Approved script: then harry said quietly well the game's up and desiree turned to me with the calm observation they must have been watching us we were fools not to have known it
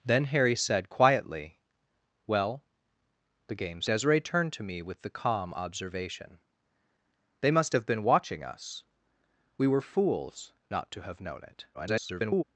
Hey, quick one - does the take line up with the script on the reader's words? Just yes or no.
no